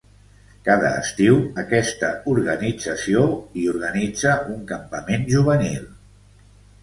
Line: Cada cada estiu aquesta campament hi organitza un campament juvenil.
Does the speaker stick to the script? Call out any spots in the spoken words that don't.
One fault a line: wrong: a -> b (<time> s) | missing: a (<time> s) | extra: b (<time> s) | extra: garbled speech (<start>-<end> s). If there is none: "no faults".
missing: cada (0.9 s)
wrong: campament -> organització (2.3 s)